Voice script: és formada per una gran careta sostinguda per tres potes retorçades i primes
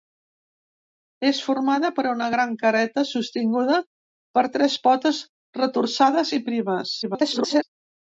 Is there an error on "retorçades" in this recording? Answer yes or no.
no